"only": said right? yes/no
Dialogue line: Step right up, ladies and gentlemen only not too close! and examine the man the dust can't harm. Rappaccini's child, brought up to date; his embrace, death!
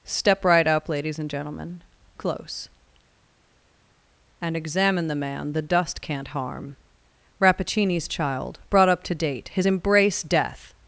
no